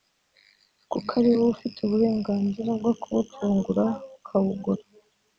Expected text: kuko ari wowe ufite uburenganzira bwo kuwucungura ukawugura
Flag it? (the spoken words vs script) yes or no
no